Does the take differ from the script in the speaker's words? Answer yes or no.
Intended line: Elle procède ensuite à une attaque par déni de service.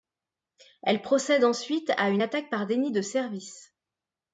no